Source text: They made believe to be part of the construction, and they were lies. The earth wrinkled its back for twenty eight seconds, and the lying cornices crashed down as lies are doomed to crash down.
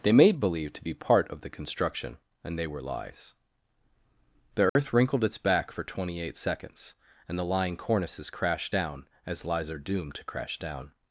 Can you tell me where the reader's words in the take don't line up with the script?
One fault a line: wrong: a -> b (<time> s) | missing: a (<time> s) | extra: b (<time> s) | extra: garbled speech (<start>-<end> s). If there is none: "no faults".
no faults